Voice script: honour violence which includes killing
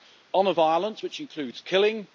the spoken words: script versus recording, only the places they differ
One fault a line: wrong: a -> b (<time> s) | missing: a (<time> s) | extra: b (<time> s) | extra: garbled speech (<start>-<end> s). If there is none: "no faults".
no faults